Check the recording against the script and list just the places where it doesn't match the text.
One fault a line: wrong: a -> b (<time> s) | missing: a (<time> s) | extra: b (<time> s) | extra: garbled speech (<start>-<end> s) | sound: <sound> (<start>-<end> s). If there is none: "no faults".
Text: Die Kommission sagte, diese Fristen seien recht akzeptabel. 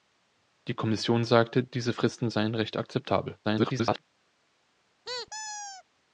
extra: garbled speech (3.4-4.0 s)
sound: squeak (5.0-5.8 s)